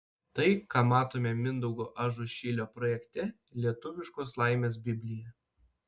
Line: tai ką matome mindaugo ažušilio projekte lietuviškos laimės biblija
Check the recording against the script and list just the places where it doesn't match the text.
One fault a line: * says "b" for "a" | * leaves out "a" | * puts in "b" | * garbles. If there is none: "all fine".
all fine